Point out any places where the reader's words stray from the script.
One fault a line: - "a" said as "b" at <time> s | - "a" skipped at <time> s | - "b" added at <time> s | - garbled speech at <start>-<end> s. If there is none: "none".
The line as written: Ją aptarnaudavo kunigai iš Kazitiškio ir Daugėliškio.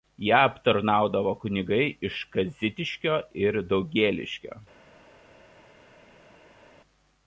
none